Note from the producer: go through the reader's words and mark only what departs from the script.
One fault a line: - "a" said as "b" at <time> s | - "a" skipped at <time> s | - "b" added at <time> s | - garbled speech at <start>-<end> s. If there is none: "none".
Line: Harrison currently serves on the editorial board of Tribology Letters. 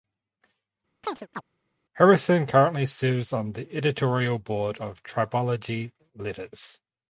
none